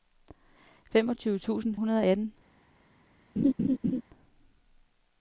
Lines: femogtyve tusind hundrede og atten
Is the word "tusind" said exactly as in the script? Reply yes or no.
yes